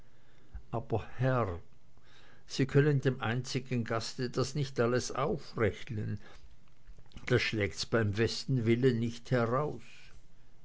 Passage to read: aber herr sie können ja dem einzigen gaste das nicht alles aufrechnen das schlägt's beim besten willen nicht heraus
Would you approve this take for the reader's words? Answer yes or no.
no